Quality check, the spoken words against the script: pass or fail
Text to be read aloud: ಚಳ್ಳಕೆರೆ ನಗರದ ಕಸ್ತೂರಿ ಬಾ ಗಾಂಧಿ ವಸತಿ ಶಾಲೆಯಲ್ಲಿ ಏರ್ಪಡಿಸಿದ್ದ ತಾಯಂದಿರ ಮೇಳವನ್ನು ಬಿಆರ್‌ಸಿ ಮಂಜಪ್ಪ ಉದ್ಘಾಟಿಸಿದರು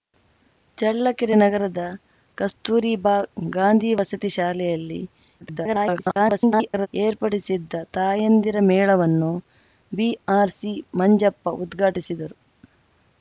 fail